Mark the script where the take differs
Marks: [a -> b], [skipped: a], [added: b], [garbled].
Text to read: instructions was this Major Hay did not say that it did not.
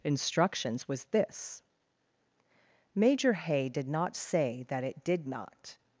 instructions was this Major Hay did not say that it did not.